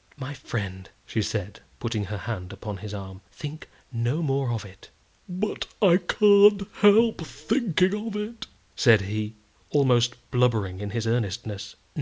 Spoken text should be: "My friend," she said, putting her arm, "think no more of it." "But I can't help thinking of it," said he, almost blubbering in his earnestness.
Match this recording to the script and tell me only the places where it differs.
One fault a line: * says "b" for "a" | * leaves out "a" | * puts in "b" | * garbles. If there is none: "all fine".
* puts in "hand upon his"